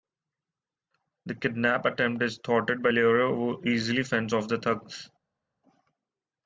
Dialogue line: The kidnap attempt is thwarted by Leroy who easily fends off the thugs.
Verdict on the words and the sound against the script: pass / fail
pass